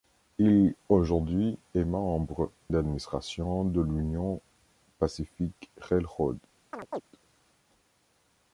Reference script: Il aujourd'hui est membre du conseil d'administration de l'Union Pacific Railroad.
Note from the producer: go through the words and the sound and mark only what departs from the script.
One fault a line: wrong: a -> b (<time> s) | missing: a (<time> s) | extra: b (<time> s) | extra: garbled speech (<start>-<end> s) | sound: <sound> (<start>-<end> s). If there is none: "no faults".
missing: du conseil (2.5 s)
sound: chirp (6.7-7.0 s)